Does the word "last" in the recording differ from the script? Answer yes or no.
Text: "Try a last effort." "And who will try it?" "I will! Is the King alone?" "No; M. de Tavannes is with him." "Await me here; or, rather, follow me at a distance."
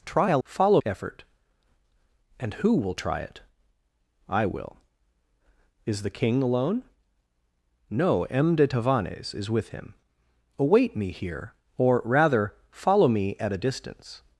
yes